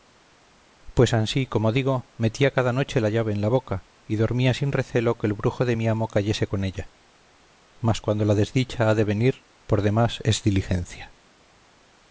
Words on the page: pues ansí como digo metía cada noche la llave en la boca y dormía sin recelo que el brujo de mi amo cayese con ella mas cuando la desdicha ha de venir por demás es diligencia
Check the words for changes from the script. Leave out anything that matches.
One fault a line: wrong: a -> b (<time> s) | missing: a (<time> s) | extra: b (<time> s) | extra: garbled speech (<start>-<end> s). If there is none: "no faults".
no faults